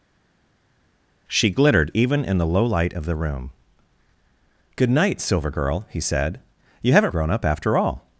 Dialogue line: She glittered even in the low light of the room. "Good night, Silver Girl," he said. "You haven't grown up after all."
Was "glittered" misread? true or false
false